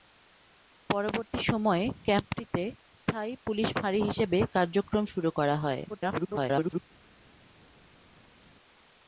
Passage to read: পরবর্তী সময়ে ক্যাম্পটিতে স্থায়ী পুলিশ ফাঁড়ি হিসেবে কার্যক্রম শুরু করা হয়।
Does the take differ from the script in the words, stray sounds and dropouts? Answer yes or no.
yes